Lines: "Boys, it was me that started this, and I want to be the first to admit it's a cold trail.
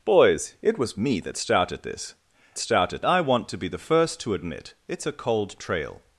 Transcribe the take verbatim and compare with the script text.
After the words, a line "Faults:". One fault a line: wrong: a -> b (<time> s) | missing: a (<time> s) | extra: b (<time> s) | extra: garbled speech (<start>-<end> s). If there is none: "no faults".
"Boys, it was me that started this, started I want to be the first to admit it's a cold trail.
Faults:
wrong: and -> started (2.6 s)